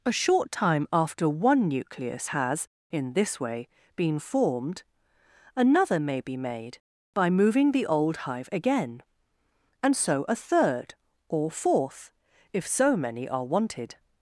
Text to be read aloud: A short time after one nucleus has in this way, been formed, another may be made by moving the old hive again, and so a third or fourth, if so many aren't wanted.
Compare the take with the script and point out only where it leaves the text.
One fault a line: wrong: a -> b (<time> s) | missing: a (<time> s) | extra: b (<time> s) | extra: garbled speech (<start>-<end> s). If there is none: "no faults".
wrong: aren't -> are (13.3 s)